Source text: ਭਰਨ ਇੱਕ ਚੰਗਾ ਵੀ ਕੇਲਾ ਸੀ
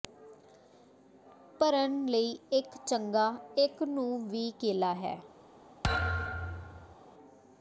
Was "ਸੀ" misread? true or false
true